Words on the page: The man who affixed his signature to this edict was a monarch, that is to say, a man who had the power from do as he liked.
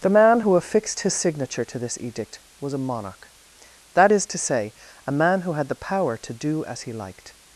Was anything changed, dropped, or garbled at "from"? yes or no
yes